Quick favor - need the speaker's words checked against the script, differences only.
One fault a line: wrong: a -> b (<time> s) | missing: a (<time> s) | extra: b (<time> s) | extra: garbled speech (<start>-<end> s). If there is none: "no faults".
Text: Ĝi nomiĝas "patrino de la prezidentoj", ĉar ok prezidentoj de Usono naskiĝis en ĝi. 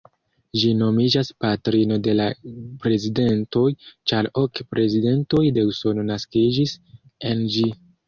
no faults